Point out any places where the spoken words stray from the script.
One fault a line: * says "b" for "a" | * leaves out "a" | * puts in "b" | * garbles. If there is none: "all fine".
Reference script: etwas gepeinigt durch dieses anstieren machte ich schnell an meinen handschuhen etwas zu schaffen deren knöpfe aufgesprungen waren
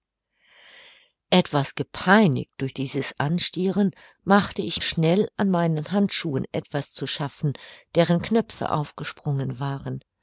all fine